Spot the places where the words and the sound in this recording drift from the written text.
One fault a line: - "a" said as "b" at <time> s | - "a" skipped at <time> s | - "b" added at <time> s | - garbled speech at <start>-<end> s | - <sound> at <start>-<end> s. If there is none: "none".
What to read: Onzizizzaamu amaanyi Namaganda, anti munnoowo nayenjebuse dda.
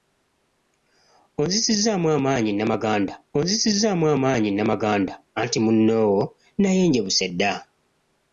- "onzizizzaamu amaanyi Namaganda" added at 3.4 s